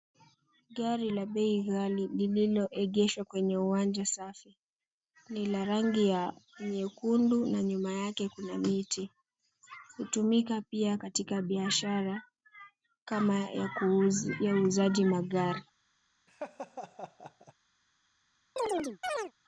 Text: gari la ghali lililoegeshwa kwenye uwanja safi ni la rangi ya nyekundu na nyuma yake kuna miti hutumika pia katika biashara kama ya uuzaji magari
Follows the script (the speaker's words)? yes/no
no